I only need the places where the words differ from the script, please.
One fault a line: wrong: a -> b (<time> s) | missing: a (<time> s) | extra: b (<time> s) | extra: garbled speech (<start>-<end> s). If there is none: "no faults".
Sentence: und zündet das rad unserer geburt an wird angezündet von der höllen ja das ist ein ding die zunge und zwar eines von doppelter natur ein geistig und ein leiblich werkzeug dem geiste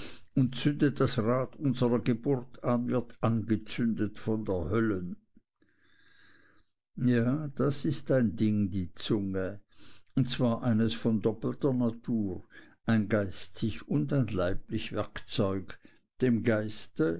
no faults